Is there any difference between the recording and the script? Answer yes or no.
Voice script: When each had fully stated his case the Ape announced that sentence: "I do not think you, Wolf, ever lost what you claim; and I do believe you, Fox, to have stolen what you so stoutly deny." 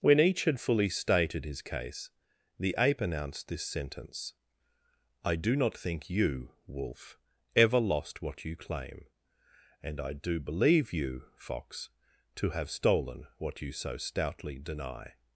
yes